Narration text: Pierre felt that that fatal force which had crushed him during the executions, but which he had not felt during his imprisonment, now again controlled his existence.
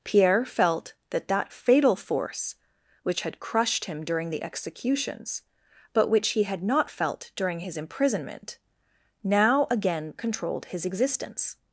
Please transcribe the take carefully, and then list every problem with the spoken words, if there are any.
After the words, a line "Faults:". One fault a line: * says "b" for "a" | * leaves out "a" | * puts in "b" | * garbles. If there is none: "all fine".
Pierre felt that that fatal force which had crushed him during the executions, but which he had not felt during his imprisonment, now again controlled his existence.
Faults:
all fine